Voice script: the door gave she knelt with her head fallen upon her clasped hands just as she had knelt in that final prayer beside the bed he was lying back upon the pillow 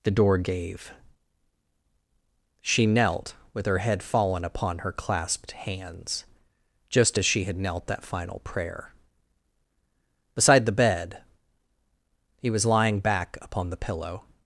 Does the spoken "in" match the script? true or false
false